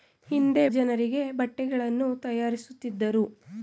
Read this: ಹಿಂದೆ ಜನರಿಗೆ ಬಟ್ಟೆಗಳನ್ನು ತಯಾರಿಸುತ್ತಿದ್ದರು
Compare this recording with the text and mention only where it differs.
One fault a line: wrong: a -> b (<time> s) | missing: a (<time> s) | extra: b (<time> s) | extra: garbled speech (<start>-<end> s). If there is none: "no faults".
no faults